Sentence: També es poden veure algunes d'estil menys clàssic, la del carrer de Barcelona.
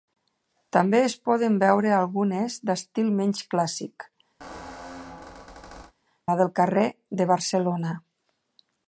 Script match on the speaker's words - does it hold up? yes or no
yes